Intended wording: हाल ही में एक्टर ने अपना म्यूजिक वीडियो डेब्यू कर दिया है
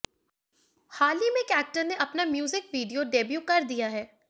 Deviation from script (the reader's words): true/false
false